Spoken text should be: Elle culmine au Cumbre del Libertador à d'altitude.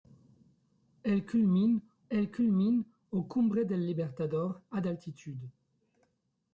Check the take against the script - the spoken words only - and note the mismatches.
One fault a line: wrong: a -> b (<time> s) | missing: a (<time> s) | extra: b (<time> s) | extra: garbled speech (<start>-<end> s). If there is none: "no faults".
extra: elle culmine (2.1 s)